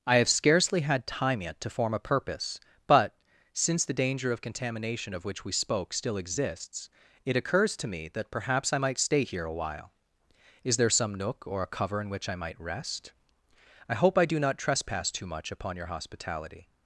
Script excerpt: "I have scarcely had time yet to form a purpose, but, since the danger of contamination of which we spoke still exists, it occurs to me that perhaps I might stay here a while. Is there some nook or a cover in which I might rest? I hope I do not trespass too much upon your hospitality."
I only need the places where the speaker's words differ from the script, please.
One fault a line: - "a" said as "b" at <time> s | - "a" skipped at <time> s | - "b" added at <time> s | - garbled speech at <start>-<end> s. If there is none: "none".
none